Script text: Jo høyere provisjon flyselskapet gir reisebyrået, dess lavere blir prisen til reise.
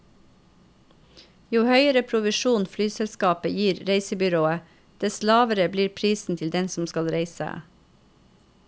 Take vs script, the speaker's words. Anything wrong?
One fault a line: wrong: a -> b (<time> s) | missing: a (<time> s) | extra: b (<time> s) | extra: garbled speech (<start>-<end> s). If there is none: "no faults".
extra: den som skal (6.5 s)